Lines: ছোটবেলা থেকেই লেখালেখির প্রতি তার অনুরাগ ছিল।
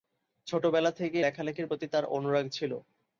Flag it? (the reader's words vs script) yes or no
no